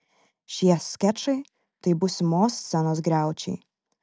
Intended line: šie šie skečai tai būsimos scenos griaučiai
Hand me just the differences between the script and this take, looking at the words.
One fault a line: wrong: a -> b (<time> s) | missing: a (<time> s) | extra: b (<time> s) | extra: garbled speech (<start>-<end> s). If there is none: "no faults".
missing: šie (0.8 s)